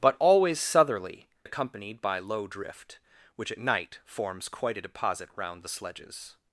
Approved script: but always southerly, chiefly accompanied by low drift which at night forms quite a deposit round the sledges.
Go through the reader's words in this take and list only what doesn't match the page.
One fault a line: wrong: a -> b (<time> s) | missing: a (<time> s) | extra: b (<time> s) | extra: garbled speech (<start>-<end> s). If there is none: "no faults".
missing: chiefly (1.3 s)